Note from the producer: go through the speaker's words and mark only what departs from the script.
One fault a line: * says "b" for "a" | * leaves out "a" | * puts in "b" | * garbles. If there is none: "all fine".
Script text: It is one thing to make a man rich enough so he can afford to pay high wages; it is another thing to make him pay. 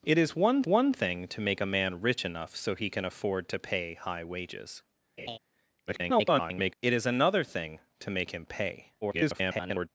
* puts in "one"
* garbles
* garbles